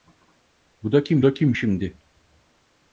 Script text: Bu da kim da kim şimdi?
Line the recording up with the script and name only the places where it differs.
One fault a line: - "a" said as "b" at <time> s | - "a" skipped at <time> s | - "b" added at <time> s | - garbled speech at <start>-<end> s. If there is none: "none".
none